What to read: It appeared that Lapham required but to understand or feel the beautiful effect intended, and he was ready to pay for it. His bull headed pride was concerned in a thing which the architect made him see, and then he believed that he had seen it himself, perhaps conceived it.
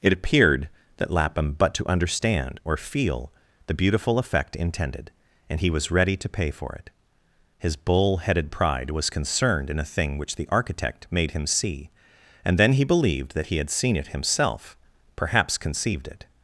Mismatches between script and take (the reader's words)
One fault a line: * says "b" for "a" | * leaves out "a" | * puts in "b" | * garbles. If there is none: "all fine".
* leaves out "required"